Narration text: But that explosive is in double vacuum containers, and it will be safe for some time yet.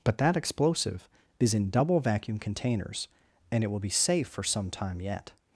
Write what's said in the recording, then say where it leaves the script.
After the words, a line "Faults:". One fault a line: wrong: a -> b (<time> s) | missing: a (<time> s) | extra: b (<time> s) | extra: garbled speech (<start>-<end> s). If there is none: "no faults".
But that explosive is in double vacuum containers, and it will be safe for some time yet.
Faults:
no faults